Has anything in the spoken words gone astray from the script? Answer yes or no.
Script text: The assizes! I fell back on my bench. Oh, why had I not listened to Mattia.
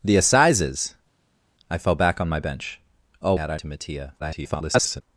yes